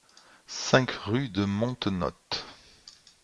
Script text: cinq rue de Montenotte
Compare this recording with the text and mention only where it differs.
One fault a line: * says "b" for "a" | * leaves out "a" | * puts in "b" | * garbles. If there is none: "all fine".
all fine